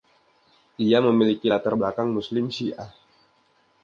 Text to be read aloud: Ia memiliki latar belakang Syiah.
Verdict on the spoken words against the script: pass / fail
fail